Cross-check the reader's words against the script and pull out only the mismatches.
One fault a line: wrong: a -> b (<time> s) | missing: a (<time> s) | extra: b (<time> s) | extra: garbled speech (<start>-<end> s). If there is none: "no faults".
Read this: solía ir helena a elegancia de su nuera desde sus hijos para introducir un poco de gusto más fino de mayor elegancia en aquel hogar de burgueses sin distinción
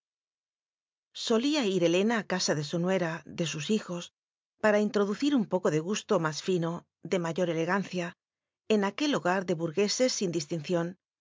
wrong: elegancia -> casa (2.3 s)
wrong: desde -> de (3.3 s)